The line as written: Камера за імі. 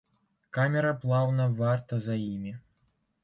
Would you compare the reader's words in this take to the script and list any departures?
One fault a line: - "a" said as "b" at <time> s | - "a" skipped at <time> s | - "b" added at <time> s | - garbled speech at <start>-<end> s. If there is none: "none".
- "плаўна варта" added at 1.0 s